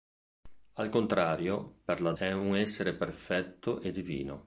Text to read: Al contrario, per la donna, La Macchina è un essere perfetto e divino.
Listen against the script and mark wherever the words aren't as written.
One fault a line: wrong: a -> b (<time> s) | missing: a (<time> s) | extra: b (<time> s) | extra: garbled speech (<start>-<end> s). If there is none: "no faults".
missing: donna La Macchina (2.1 s)